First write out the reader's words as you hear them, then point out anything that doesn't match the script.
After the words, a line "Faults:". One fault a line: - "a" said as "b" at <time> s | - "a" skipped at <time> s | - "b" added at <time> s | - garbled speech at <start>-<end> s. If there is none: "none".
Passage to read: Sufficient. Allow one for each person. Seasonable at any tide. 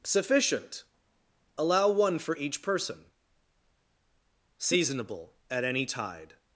Sufficient. Allow one for each person. Seasonable at any tide.
Faults:
none